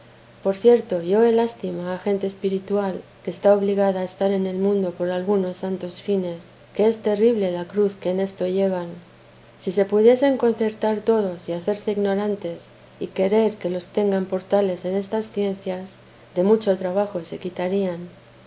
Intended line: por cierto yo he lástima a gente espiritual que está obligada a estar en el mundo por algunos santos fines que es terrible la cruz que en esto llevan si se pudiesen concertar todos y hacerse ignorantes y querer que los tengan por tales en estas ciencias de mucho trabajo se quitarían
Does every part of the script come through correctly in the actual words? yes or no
yes